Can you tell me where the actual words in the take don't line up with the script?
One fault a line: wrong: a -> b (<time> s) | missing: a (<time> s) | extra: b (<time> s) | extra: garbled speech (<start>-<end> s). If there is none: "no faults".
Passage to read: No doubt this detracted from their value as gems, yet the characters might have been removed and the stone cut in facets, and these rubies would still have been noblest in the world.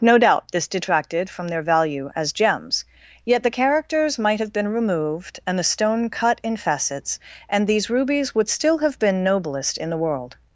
no faults